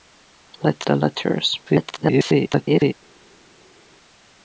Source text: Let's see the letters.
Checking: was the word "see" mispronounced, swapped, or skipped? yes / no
yes